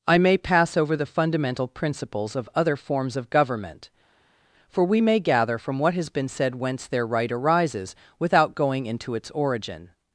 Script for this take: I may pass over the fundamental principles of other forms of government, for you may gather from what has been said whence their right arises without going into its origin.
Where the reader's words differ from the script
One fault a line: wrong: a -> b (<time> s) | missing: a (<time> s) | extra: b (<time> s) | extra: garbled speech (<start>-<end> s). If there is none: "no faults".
wrong: you -> we (4.8 s)